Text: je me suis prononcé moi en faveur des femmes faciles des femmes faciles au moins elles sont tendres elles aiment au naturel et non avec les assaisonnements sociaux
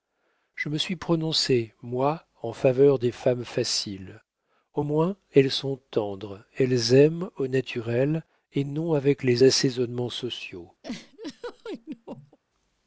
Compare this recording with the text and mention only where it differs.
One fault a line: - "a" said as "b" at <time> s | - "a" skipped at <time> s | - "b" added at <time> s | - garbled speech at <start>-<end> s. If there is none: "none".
- "des femmes faciles" skipped at 4.2 s